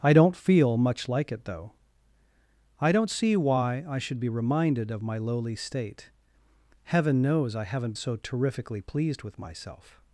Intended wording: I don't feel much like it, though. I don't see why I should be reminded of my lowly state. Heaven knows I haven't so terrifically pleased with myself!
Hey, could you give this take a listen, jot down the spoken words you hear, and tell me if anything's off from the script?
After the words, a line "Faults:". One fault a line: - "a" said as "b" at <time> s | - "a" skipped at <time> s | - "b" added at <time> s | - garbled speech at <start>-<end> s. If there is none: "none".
I don't feel much like it, though. I don't see why I should be reminded of my lowly state. Heaven knows I haven't so terrifically pleased with myself!
Faults:
none